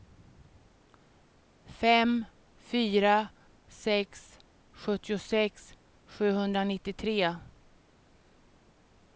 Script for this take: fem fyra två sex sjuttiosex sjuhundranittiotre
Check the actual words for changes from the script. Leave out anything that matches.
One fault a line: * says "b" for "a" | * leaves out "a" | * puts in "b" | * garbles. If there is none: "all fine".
* leaves out "två"